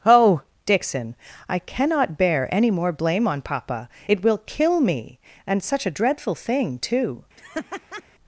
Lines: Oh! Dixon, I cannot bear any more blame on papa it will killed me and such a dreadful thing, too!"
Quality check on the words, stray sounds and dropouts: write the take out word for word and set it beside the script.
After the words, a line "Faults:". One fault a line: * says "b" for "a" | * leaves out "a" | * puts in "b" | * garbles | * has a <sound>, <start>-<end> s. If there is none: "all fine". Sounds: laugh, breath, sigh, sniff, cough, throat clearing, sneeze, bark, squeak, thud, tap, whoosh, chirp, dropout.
Oh! Dixon, I cannot bear any more blame on papa it will kill me and such a dreadful thing, too!"
Faults:
* says "kill" for "killed"
* has a laugh, 7.4-8.0 s